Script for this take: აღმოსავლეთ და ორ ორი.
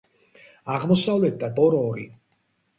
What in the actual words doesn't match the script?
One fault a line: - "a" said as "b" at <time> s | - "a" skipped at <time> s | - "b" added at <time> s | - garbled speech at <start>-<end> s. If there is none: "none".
none